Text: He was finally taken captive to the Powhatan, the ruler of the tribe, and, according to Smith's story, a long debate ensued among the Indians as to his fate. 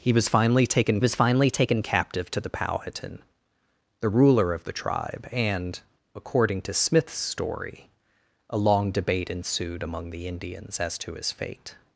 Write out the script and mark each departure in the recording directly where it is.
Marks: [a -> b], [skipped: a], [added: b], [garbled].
He was finally taken [added: was finally taken] captive to the Powhatan, the ruler of the tribe, and, according to Smith's story, a long debate ensued among the Indians as to his fate.